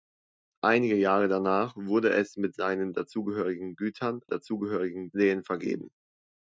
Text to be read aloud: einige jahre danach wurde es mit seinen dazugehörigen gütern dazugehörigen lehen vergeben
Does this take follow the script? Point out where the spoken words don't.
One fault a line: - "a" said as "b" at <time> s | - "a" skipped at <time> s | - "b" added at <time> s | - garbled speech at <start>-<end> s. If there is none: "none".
none